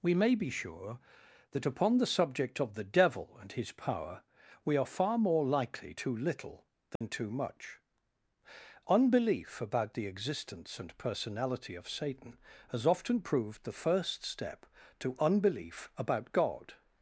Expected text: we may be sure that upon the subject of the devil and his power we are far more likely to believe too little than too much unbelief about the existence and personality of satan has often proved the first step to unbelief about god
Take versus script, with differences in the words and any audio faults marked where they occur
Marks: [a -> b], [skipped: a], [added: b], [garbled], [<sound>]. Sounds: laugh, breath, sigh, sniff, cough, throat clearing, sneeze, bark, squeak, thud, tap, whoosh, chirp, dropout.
we may be sure that upon the subject of the devil and his power we are far more likely [skipped: to believe] too little than [dropout] too much unbelief about the existence and personality of satan has often proved the first step to unbelief about god